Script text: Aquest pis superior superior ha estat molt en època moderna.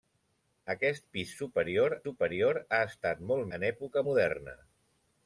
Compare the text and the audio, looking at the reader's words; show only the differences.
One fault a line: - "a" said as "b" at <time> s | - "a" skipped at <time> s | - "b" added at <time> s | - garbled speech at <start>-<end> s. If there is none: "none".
none